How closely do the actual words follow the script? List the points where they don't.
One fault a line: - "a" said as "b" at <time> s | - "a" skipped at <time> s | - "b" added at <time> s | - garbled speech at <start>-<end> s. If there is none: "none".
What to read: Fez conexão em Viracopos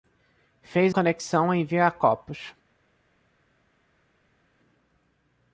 none